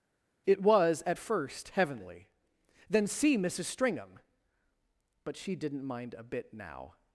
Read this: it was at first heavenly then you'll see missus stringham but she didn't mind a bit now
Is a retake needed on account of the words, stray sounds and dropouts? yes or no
yes